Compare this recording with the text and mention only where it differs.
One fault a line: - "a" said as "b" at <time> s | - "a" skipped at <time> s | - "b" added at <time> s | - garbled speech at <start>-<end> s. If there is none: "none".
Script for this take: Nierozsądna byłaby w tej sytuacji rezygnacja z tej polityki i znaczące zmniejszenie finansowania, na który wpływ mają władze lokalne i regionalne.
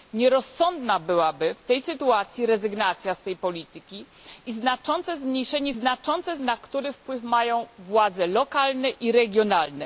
- "finansowania" said as "znaczące" at 5.7 s